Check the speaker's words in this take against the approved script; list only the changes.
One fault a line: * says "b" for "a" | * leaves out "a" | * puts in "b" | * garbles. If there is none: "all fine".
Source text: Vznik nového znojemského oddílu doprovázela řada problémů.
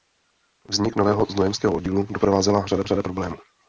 * puts in "řada"